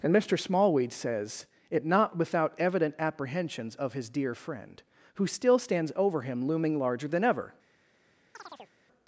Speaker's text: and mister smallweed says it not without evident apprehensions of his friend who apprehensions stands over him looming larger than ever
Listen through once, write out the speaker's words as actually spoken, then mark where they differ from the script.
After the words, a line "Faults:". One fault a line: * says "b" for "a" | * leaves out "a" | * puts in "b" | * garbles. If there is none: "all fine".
and mister smallweed says it not without evident apprehensions of his dear friend who still stands over him looming larger than ever
Faults:
* puts in "dear"
* says "still" for "apprehensions"